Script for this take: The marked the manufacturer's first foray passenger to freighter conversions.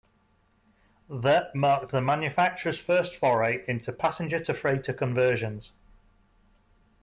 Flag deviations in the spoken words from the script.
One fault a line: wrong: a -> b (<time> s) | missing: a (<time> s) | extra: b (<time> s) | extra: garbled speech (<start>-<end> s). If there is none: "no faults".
extra: into (3.7 s)